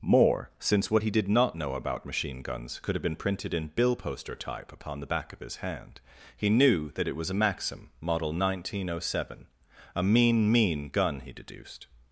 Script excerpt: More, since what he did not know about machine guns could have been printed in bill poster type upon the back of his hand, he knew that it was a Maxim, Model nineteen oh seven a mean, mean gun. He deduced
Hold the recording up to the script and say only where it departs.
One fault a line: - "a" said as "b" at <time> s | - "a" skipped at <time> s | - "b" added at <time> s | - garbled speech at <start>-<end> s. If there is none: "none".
none